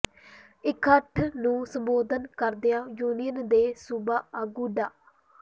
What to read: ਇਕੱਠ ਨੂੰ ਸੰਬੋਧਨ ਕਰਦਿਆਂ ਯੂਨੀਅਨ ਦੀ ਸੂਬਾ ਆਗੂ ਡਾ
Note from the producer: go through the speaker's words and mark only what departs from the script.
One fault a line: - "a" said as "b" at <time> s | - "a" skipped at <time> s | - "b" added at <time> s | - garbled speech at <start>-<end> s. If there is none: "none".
- "ਦੀ" said as "ਦੇ" at 3.5 s